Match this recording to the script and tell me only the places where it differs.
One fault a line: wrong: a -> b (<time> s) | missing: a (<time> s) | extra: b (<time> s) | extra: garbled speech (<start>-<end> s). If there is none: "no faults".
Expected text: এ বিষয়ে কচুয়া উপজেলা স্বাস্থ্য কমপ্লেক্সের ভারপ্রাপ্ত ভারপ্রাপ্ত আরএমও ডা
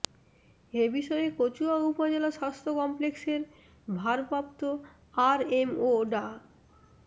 missing: ভারপ্রাপ্ত (4.6 s)